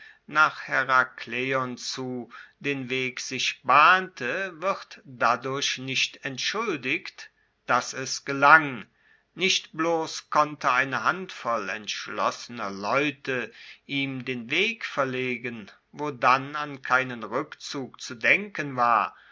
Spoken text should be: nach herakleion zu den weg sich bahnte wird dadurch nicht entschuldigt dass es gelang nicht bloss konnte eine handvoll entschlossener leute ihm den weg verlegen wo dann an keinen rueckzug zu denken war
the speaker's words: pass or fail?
pass